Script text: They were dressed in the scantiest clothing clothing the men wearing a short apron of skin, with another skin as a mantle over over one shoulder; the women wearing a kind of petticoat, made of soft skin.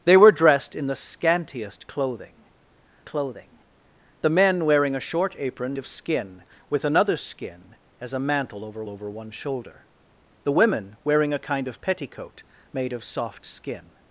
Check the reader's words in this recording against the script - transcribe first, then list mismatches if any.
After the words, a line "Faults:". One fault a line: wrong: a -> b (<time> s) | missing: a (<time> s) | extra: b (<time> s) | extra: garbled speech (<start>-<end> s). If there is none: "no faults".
They were dressed in the scantiest clothing clothing the men wearing a short apron of skin, with another skin as a mantle over over one shoulder; the women wearing a kind of petticoat, made of soft skin.
Faults:
no faults